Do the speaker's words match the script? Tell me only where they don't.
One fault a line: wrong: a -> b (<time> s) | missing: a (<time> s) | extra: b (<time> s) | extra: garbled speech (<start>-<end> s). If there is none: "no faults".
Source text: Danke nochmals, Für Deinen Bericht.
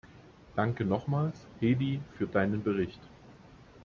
extra: Hedy (1.6 s)